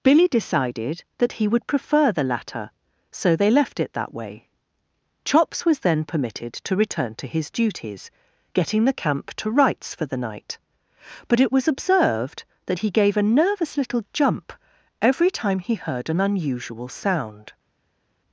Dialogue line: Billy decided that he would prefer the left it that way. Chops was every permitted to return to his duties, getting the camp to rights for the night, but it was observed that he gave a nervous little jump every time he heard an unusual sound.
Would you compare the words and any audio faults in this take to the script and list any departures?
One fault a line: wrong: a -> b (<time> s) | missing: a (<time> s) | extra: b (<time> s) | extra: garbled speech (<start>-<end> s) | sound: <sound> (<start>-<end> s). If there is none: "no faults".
extra: latter so they (2.2 s)
wrong: every -> then (5.8 s)